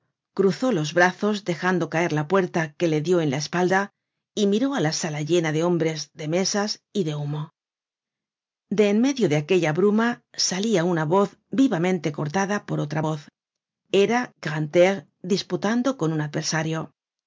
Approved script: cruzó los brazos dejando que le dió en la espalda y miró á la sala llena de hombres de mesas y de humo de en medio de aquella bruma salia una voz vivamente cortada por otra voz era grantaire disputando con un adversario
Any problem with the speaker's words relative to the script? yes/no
yes